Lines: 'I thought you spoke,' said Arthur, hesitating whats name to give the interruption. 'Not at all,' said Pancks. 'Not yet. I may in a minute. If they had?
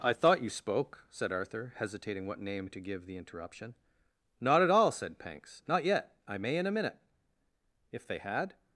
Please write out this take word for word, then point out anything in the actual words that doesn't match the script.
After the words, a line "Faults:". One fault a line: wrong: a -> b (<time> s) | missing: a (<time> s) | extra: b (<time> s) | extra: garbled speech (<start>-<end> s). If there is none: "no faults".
'I thought you spoke,' said Arthur, hesitating what name to give the interruption. 'Not at all,' said Pancks. 'Not yet. I may in a minute. If they had?
Faults:
wrong: whats -> what (2.2 s)